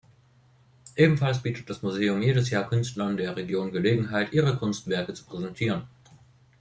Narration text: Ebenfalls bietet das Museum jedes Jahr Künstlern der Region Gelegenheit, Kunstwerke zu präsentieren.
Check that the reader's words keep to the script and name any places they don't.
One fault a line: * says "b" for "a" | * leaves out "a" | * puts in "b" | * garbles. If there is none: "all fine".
* puts in "ihre"